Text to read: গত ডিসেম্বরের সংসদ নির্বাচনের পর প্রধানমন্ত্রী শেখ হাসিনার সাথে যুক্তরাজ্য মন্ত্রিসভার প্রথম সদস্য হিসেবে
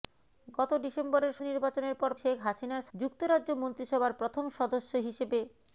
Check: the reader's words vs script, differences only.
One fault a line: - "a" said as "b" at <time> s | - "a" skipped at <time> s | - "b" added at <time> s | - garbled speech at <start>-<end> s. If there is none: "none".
- "সংসদ" skipped at 1.3 s
- "প্রধানমন্ত্রী" skipped at 2.1 s
- "সাথে" skipped at 2.9 s